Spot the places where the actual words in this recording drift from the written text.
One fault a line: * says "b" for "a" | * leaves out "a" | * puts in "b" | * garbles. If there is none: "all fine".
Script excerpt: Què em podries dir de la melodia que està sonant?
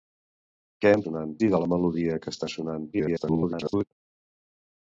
* says "sonant" for "podries"
* garbles